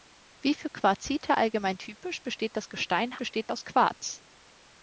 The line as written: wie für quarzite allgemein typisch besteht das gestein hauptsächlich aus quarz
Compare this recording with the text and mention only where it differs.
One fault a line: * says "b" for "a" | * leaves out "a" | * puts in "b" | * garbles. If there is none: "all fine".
* says "besteht" for "hauptsächlich"